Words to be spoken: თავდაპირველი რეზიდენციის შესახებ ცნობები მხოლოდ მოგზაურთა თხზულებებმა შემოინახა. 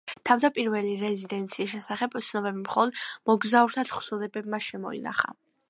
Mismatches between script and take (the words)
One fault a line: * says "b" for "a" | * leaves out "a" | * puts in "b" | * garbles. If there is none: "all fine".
all fine